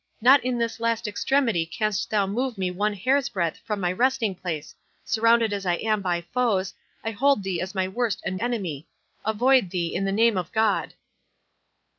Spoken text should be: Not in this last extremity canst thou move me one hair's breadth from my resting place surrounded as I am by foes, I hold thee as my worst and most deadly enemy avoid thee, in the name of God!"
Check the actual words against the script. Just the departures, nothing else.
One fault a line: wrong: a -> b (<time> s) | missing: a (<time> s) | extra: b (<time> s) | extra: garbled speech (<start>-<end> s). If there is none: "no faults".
missing: most deadly (8.3 s)